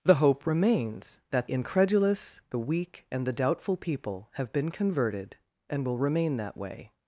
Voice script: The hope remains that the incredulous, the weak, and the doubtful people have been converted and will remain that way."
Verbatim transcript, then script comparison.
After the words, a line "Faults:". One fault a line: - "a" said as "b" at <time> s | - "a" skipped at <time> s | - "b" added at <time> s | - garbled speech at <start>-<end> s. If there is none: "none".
The hope remains that incredulous, the weak, and the doubtful people have been converted and will remain that way."
Faults:
- "the" skipped at 1.5 s